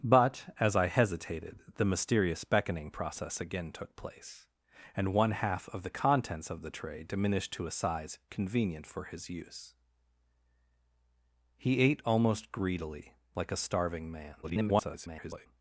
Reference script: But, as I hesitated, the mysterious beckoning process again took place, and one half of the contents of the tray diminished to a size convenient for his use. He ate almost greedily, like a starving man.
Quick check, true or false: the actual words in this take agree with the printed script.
false